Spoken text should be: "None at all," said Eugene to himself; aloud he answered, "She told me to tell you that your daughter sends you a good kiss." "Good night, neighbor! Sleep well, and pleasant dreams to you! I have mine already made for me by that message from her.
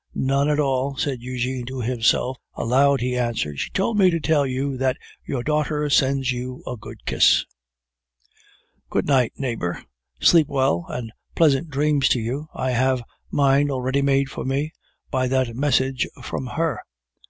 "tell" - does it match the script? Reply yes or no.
yes